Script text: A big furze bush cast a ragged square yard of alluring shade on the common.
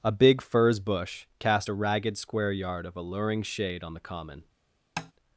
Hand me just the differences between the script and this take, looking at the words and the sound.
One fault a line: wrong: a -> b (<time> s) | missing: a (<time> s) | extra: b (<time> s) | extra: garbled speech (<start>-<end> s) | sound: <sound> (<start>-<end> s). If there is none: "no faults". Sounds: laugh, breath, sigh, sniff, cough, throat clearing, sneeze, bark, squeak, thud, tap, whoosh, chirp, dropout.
sound: tap (5.0-5.1 s)